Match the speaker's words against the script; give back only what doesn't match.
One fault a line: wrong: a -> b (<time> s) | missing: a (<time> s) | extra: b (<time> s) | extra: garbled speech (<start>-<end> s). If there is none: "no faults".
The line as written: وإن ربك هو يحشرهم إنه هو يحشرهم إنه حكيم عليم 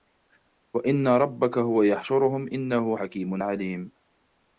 missing: هو يحشرهم إنه (3.0 s)